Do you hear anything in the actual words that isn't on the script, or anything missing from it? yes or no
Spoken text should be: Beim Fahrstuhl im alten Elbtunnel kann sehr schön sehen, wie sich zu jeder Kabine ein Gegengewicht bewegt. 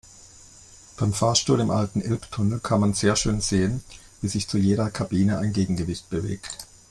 yes